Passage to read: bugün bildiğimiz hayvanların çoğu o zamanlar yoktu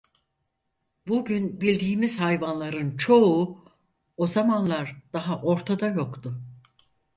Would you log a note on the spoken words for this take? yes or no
yes